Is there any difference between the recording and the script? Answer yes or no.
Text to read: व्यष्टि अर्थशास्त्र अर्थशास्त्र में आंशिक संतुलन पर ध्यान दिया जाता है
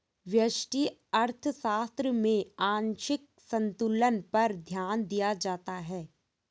yes